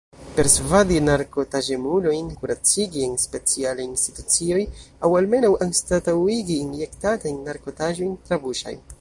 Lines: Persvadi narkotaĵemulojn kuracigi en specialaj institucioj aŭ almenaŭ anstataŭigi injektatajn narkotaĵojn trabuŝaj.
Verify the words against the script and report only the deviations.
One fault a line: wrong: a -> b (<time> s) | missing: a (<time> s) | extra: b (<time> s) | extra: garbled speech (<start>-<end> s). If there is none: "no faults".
no faults